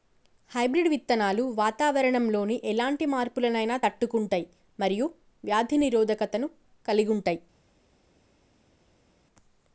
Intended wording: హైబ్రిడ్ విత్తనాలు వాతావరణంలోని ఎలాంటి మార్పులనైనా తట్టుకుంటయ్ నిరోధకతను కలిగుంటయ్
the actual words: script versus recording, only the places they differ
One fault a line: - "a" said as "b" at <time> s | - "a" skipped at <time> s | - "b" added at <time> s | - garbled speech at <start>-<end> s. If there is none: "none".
- "మరియు వ్యాధి" added at 4.8 s